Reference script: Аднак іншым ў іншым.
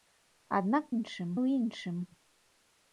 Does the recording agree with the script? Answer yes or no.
yes